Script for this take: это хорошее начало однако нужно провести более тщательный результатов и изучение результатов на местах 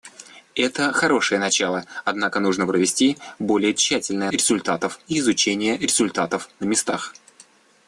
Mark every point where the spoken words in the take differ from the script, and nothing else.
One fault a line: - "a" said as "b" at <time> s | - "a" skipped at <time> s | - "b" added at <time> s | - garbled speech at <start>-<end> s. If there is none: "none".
none